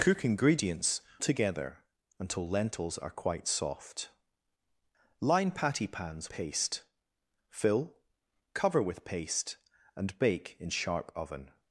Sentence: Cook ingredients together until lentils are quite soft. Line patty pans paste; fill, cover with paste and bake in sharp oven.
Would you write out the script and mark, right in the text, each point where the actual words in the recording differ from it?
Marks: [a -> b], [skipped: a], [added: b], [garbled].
Cook ingredients together until lentils are quite soft. Line patty pans paste; fill, cover with paste and bake in sharp oven.